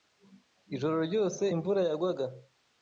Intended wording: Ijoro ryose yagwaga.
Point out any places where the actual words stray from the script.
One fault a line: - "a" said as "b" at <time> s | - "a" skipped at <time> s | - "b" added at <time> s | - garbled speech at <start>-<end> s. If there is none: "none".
- "imvura" added at 1.5 s